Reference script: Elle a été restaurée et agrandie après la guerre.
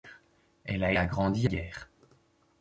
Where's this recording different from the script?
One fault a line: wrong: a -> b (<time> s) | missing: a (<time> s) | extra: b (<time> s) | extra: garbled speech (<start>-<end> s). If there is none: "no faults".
missing: été restaurée (0.9 s)
missing: après la (1.5 s)